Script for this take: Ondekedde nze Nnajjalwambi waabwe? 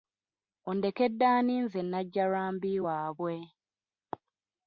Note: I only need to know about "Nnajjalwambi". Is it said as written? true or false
true